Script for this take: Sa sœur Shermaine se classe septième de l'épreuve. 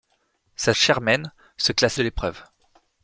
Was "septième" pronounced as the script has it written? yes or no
no